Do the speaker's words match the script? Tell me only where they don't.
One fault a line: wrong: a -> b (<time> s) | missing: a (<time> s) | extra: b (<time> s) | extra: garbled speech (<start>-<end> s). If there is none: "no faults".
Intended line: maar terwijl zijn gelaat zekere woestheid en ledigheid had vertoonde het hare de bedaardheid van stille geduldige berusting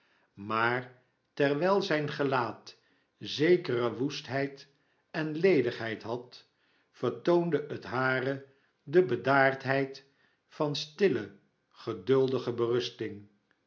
no faults